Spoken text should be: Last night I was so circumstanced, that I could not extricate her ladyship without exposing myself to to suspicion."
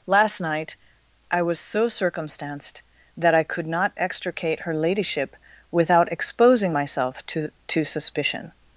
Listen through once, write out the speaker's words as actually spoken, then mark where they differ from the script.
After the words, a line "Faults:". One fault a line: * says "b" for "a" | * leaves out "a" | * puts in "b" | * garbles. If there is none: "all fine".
Last night I was so circumstanced, that I could not extricate her ladyship without exposing myself to to suspicion."
Faults:
all fine